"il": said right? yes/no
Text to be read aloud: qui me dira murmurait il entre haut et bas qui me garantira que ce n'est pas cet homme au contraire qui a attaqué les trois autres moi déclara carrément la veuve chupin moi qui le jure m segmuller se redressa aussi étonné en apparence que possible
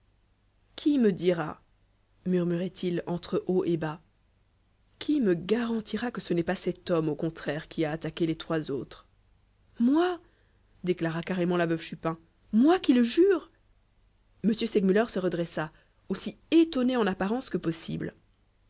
yes